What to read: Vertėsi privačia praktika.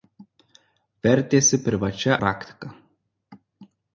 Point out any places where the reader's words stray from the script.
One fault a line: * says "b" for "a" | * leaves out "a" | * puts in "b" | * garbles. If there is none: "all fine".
all fine